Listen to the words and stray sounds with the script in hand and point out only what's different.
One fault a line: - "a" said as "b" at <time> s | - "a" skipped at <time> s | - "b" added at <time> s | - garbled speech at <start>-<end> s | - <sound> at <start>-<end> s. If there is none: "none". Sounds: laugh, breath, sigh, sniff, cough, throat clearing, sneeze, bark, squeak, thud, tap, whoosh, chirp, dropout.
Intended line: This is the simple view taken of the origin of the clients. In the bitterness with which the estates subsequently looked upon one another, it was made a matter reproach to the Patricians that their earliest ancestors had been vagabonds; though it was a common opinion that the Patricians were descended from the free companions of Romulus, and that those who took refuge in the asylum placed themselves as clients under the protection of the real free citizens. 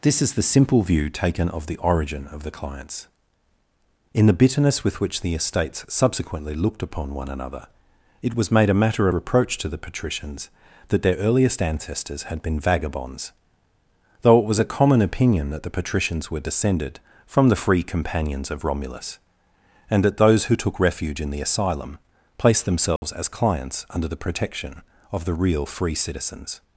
- dropout at 23.0-23.0 s